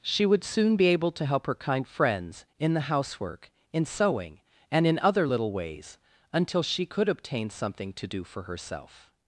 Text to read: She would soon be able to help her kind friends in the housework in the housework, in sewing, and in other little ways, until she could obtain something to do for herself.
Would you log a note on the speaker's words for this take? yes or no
yes